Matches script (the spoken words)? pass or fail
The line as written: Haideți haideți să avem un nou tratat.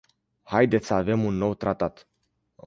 fail